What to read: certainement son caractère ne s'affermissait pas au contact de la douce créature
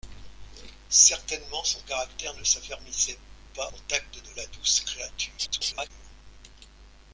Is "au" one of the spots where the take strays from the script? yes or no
yes